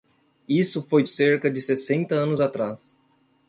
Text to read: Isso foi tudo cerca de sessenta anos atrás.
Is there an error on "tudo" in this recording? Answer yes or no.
yes